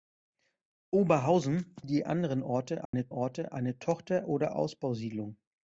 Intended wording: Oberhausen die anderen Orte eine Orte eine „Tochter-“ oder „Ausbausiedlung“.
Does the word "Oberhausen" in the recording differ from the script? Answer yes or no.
no